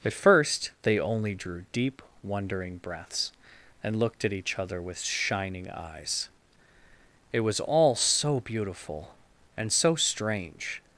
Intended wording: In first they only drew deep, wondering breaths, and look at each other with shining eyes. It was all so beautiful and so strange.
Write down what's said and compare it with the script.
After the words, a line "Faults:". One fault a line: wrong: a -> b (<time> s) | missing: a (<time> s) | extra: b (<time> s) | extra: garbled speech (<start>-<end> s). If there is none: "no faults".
At first they only drew deep, wondering breaths, and looked at each other with shining eyes. It was all so beautiful and so strange.
Faults:
wrong: In -> At (0.0 s)
wrong: look -> looked (4.0 s)